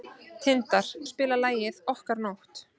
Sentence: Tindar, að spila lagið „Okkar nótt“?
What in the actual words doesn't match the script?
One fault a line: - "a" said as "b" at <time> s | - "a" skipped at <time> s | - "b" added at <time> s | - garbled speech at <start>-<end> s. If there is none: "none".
none